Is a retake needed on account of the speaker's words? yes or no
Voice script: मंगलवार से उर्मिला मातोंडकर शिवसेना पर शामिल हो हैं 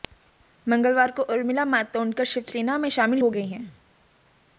yes